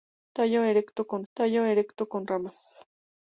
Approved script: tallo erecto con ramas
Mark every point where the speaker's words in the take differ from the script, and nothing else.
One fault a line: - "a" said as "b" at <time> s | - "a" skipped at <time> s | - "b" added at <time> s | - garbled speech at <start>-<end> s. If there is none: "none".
- "tallo erecto con" added at 1.3 s